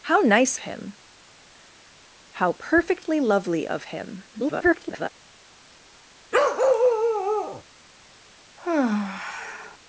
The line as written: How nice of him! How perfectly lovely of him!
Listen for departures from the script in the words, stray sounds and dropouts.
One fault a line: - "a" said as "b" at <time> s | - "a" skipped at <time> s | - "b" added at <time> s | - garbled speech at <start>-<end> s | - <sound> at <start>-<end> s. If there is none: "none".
- "of" skipped at 0.6 s
- garbled speech at 4.3-5.1 s
- bark at 6.3-7.6 s
- sigh at 8.6-9.8 s